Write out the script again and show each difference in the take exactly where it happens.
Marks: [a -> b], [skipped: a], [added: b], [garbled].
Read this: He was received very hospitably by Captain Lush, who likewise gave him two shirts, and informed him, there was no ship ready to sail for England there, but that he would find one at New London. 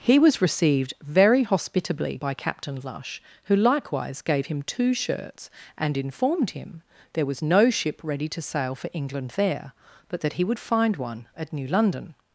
He was received very hospitably by Captain Lush, who likewise gave him two shirts, and informed him, there was no ship ready to sail for England there, but that he would find one at New London.